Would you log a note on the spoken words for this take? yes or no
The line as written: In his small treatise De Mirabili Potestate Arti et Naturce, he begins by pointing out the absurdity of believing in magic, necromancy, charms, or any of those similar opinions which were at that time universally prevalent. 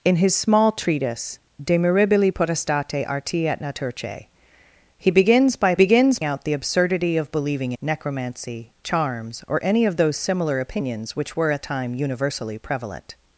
yes